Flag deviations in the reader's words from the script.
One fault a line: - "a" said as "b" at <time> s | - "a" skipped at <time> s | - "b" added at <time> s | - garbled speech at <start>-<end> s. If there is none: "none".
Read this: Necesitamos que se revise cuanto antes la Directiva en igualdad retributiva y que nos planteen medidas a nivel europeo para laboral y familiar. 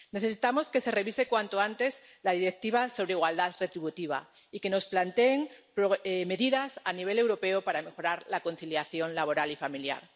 - "en" said as "sobre" at 2.9 s
- "mejorar la conciliación" added at 7.8 s